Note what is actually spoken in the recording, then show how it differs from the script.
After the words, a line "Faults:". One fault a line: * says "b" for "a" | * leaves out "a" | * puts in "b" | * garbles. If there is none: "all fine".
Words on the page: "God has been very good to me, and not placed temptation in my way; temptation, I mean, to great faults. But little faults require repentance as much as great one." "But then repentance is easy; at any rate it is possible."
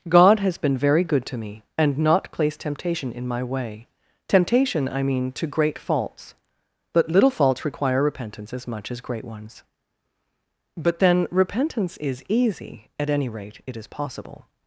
"God has been very good to me, and not placed temptation in my way; temptation, I mean, to great faults. But little faults require repentance as much as great ones." "But then repentance is easy; at any rate it is possible."
Faults:
* says "ones" for "one"